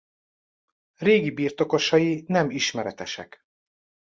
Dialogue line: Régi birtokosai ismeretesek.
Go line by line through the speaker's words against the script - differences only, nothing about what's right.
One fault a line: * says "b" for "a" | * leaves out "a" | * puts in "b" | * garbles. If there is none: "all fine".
* puts in "nem"